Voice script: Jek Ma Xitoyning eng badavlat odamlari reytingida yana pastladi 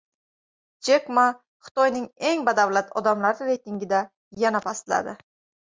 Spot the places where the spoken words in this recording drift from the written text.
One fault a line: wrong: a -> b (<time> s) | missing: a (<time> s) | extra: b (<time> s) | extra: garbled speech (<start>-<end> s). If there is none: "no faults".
no faults